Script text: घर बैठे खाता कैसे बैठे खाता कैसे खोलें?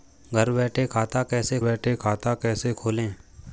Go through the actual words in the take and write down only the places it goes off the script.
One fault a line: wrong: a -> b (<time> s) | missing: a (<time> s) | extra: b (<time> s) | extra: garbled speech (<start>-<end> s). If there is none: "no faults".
no faults